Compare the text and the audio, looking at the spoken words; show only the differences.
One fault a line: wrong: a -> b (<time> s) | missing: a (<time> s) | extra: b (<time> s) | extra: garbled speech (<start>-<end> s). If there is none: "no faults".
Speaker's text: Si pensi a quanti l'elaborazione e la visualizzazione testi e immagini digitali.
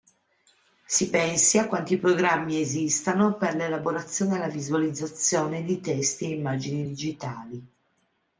extra: programmi esistano per (2.0 s)
extra: di (5.6 s)